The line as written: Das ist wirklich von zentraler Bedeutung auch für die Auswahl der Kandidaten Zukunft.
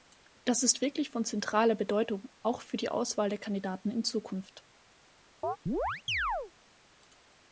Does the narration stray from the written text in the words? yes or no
yes